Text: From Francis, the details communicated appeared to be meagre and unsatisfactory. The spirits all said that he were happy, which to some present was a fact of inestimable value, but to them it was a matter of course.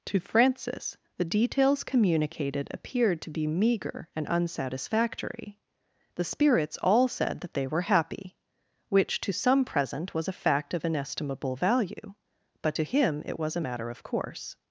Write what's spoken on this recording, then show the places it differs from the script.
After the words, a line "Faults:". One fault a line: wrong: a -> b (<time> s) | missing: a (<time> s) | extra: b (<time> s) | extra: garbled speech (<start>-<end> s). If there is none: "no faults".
To Francis, the details communicated appeared to be meagre and unsatisfactory. The spirits all said that they were happy, which to some present was a fact of inestimable value, but to him it was a matter of course.
Faults:
wrong: From -> To (0.1 s)
wrong: he -> they (7.5 s)
wrong: them -> him (12.8 s)